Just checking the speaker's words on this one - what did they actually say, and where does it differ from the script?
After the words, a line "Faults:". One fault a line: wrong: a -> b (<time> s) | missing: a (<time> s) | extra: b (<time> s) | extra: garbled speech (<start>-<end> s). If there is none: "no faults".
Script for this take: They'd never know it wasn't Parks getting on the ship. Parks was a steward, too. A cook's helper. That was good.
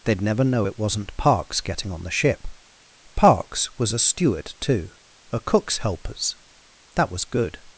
They'd never know it wasn't Parks getting on the ship. Parks was a steward, too. A cook's helpers. That was good.
Faults:
wrong: helper -> helpers (5.8 s)